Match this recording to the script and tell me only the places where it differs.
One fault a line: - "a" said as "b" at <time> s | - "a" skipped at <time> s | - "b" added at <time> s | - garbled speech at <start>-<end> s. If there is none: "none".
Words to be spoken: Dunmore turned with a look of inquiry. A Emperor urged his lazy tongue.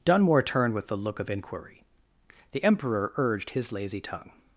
- "A" said as "The" at 2.5 s